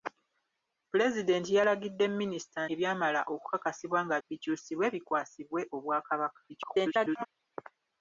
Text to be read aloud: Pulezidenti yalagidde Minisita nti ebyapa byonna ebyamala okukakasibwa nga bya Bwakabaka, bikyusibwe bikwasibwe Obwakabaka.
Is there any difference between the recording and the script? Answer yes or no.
yes